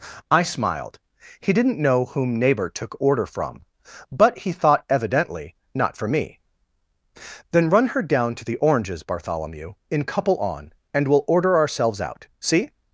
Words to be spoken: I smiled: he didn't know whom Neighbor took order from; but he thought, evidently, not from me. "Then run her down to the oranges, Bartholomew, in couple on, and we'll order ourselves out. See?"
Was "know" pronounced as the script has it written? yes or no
yes